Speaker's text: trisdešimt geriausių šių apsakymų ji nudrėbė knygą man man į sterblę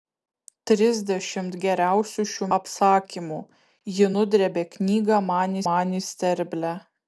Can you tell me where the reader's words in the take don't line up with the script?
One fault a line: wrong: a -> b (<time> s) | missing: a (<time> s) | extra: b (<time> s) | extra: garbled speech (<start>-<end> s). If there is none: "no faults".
no faults